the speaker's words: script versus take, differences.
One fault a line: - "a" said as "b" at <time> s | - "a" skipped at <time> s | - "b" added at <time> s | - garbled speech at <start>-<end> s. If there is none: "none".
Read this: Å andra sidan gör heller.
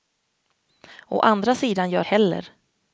none